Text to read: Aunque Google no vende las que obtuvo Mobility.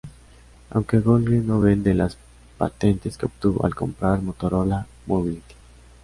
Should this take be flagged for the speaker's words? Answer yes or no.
yes